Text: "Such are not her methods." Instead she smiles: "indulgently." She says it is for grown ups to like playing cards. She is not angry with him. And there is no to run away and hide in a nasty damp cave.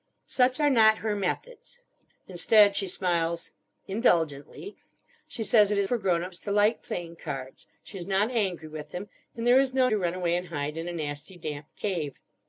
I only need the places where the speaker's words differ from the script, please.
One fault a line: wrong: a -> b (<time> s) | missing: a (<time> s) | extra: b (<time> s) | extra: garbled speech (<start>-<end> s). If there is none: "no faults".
no faults